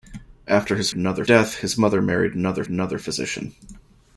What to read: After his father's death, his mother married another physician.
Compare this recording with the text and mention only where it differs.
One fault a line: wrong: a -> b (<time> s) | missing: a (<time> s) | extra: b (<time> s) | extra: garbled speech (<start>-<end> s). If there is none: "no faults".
wrong: father's -> another (0.9 s)
extra: another (2.7 s)